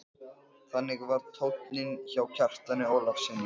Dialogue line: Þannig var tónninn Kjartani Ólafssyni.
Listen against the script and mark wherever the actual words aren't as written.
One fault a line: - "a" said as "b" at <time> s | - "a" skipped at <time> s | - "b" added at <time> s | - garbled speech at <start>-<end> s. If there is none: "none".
- "hjá" added at 2.1 s